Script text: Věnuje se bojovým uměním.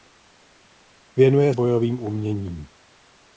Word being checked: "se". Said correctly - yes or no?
no